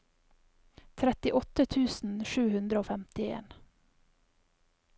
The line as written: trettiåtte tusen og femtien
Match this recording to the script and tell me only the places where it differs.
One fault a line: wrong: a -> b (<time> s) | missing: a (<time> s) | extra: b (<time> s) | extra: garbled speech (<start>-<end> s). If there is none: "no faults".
extra: sju hundre (2.3 s)